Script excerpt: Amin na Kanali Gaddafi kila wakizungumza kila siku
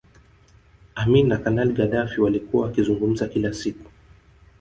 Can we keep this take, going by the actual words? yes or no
no